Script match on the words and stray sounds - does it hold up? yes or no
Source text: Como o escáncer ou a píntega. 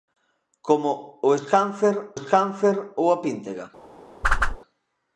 no